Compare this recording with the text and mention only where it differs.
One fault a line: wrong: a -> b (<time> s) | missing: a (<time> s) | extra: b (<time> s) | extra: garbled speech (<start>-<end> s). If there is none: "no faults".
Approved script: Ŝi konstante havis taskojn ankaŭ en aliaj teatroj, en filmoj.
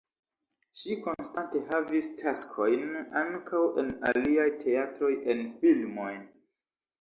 no faults